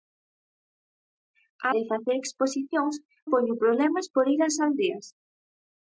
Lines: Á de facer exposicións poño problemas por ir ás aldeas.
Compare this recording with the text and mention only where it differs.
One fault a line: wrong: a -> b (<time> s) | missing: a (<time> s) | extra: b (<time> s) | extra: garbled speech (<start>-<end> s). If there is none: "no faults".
no faults